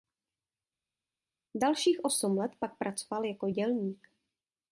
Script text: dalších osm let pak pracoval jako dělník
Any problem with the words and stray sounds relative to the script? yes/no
no